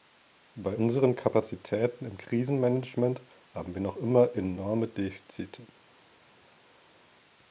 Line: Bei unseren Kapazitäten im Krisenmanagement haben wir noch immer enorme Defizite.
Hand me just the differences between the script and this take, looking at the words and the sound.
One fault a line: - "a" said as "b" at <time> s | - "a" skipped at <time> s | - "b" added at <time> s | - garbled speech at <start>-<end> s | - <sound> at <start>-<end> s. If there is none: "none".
none